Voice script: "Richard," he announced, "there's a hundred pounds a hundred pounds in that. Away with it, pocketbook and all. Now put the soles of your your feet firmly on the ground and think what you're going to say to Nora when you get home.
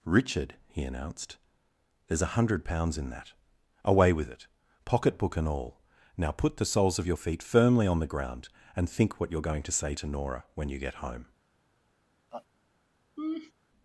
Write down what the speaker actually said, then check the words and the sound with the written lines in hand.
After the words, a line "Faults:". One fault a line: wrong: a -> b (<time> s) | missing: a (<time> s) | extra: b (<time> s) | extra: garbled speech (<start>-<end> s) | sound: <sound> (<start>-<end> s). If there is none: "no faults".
"Richard," he announced, "there's a hundred pounds in that. Away with it, pocketbook and all. Now put the soles of your feet firmly on the ground and think what you're going to say to Nora when you get home.
Faults:
missing: a hundred pounds (3.0 s)
missing: your (7.2 s)
sound: laugh (12.3-12.5 s)
sound: laugh (13.2-13.5 s)